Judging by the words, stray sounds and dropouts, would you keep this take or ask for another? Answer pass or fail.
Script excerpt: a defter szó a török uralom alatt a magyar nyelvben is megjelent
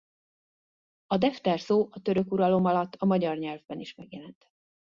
pass